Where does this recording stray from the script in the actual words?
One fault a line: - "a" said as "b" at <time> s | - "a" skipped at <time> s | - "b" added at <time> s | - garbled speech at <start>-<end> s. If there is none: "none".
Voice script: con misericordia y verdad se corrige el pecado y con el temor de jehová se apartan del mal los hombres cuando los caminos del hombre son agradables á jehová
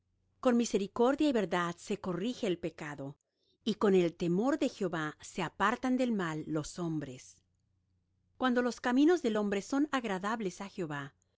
none